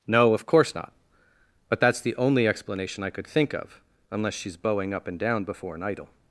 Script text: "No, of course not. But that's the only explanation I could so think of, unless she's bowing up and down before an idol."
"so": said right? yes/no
no